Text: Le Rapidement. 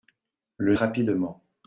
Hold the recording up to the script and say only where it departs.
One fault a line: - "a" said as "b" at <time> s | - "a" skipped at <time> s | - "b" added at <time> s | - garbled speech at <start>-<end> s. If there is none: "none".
none